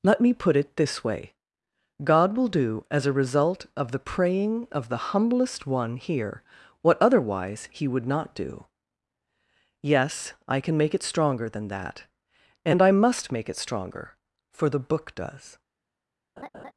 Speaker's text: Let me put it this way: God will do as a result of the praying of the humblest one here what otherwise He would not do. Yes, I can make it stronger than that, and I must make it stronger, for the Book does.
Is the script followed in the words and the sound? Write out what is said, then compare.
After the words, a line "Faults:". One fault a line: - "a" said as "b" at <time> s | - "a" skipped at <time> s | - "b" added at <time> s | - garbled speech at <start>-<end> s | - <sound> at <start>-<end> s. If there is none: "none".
Let me put it this way: God will do as a result of the praying of the humblest one here what otherwise He would not do. Yes, I can make it stronger than that, and I must make it stronger, for the Book does.
Faults:
- laugh at 16.4-16.7 s